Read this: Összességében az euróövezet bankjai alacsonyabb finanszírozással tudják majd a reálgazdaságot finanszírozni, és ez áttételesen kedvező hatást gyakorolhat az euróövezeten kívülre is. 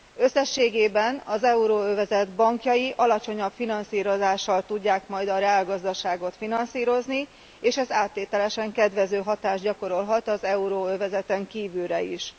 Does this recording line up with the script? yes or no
yes